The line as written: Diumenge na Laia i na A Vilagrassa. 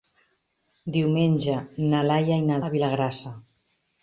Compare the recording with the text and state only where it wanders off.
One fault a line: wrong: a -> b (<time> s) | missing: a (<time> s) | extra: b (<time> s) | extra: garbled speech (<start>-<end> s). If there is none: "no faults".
no faults